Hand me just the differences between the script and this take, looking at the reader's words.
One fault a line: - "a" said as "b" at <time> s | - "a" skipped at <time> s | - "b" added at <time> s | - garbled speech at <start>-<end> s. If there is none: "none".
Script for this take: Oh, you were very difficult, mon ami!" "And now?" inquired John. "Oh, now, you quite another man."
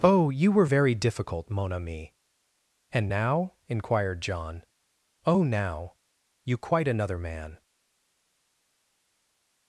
none